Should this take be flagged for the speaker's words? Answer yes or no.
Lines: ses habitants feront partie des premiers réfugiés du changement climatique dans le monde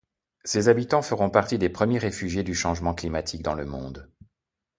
no